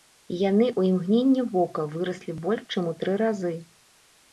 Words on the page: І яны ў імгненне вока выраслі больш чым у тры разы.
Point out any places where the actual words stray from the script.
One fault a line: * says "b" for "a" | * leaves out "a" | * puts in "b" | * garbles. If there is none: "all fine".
all fine